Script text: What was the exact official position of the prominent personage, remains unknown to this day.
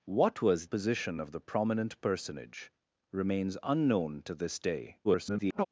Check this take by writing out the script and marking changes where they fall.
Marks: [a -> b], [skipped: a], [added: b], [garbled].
What was [skipped: the exact official] position of the prominent personage, remains unknown to this day. [garbled]